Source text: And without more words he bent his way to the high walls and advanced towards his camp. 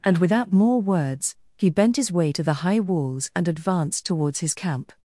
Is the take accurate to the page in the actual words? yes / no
yes